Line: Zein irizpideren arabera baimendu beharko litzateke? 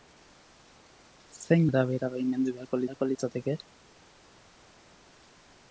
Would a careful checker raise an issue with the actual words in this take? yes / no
yes